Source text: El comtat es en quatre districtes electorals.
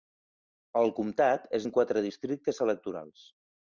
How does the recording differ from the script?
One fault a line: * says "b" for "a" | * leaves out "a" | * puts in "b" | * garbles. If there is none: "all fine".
all fine